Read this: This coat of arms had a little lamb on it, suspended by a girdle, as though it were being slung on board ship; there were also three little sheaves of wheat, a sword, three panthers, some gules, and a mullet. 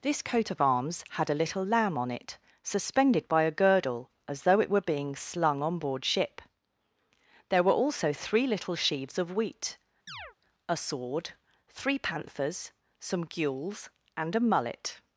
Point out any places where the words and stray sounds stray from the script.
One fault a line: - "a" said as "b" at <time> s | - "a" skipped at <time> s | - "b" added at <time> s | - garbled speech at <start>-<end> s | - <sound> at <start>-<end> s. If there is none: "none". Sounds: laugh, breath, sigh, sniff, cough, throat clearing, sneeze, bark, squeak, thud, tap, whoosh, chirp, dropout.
- chirp at 10.1-10.4 s